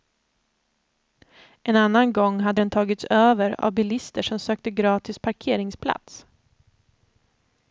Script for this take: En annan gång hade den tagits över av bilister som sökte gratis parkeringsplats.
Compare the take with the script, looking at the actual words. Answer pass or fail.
pass